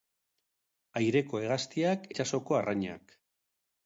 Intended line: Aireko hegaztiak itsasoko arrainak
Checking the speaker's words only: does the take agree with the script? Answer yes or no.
yes